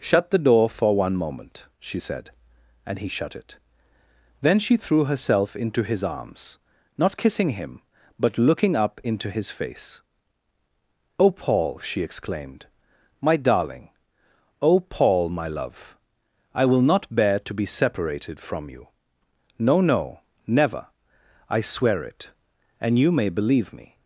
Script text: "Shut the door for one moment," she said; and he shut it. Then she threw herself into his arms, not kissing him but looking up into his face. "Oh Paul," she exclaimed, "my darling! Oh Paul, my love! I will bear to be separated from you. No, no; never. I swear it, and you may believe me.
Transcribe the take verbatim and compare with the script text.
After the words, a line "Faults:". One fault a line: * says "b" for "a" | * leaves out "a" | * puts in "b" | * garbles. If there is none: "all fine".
"Shut the door for one moment," she said; and he shut it. Then she threw herself into his arms, not kissing him but looking up into his face. "Oh Paul," she exclaimed, "my darling! Oh Paul, my love! I will not bear to be separated from you. No, no; never. I swear it, and you may believe me.
Faults:
* puts in "not"